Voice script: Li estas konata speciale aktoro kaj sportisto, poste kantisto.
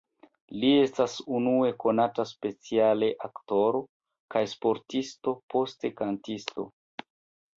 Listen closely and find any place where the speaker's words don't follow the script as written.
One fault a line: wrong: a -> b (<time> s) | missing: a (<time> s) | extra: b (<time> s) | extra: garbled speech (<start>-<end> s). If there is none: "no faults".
extra: unue (1.4 s)